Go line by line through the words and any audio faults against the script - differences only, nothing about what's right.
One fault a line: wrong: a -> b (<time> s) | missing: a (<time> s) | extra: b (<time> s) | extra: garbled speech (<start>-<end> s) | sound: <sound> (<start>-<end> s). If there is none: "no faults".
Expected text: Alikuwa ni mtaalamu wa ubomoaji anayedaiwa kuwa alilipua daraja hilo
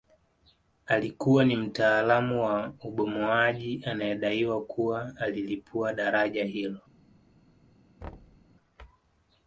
sound: thud (8.0-8.5 s)